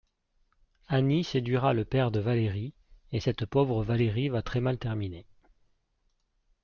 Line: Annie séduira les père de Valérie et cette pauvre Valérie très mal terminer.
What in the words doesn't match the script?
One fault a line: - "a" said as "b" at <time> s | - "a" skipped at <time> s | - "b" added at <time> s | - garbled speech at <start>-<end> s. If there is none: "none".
- "les" said as "le" at 1.7 s
- "va" added at 4.3 s